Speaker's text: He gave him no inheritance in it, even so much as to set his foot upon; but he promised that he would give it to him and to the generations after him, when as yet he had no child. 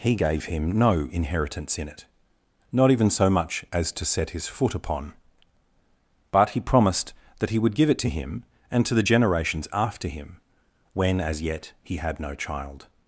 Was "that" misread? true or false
false